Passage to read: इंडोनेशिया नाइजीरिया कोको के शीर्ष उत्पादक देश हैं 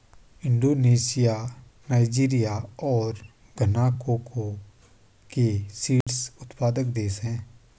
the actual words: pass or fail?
fail